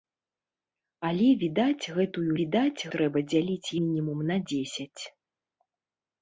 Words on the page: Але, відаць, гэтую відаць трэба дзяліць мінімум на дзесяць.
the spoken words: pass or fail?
pass